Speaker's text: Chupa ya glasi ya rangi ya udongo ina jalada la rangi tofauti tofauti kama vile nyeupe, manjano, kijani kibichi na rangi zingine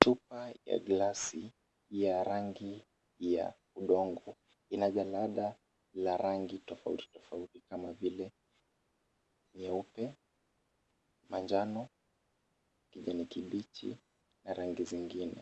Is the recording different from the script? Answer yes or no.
no